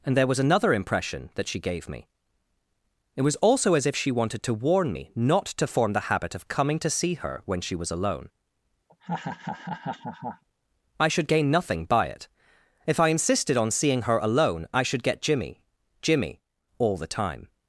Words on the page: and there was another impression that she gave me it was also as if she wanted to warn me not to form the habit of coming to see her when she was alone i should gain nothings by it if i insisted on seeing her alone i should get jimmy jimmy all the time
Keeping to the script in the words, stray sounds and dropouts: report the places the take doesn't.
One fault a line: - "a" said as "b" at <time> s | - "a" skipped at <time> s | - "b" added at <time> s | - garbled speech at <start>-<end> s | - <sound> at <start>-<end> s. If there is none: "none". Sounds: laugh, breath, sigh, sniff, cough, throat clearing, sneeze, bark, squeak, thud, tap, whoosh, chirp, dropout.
- laugh at 8.9-10.4 s
- "nothings" said as "nothing" at 11.5 s